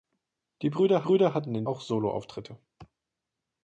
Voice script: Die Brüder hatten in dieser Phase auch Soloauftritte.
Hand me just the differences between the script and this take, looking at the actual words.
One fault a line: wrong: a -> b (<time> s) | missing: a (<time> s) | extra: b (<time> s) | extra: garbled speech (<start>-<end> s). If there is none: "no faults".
extra: Brüder (1.0 s)
missing: dieser Phase (1.6 s)